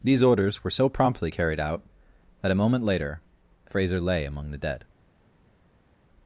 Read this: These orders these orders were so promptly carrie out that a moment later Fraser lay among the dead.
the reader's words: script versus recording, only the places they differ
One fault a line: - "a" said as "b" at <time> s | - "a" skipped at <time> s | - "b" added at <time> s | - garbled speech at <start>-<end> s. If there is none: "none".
- "these orders" skipped at 0.6 s
- "carrie" said as "carried" at 1.3 s